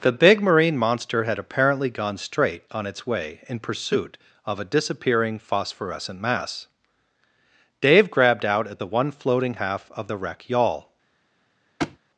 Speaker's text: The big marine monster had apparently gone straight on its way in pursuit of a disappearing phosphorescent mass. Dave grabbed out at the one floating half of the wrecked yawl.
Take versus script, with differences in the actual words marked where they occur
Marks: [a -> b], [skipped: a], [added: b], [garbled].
The big marine monster had apparently gone straight on its way in pursuit of a disappearing phosphorescent mass. Dave grabbed out at the one floating half of the [wrecked -> wreck] yawl.